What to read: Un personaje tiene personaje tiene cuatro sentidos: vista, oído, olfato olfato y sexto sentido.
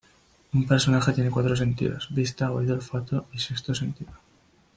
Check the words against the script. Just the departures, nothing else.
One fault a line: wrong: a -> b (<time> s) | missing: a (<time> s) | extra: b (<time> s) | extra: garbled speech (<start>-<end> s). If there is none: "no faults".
missing: personaje tiene (1.3 s)
missing: olfato (3.2 s)